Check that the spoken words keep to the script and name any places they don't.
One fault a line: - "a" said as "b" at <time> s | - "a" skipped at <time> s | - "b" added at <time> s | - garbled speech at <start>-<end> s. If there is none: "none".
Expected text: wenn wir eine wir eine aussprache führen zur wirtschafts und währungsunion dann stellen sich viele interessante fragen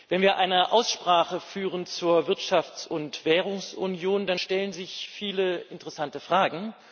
- "wir eine" skipped at 0.7 s